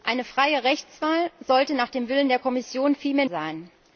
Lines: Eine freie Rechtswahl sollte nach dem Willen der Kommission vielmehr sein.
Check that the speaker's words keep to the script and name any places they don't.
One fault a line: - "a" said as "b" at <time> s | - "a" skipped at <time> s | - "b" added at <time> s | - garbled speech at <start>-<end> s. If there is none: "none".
none